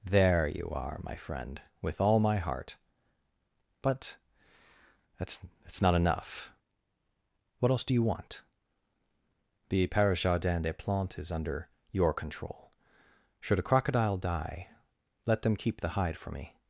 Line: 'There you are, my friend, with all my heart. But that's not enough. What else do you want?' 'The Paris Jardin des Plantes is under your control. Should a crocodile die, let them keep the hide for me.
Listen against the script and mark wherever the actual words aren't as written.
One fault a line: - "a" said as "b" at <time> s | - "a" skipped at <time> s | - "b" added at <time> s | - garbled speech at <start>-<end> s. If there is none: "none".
- "that's" added at 5.6 s